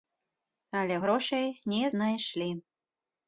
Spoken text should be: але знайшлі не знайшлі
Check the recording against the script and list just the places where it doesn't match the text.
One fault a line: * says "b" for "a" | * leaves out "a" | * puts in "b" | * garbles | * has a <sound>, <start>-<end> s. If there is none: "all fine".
* says "грошай" for "знайшлі"